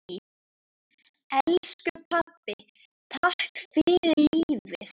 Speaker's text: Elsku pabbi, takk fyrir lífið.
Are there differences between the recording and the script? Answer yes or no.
no